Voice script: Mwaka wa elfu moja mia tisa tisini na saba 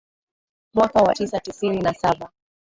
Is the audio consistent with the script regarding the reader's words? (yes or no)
no